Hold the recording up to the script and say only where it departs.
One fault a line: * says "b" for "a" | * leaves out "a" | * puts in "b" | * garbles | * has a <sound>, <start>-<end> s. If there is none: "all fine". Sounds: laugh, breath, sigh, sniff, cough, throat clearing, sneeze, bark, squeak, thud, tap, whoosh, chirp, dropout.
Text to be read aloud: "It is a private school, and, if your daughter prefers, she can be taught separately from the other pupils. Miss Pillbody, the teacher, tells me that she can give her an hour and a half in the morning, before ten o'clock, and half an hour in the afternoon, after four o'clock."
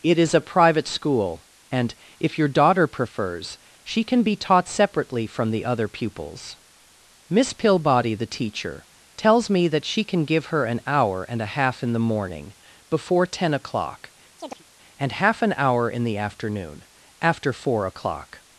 * has a chirp, 14.4-14.6 s